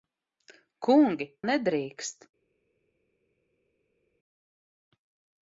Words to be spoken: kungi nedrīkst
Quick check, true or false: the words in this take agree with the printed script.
true